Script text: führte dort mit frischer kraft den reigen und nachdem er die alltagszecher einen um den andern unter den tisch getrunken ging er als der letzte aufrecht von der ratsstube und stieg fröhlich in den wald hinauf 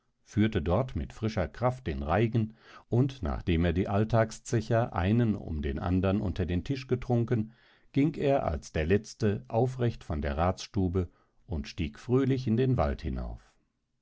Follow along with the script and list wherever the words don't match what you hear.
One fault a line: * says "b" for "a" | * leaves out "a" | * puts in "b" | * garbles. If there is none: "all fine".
all fine